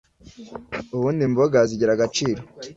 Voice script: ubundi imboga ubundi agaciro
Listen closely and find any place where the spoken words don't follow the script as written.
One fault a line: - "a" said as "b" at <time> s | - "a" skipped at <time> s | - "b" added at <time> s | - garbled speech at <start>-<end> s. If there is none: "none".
- "ubundi" said as "zigira" at 1.7 s